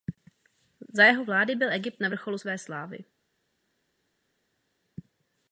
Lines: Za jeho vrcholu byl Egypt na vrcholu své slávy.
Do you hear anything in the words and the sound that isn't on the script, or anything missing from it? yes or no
yes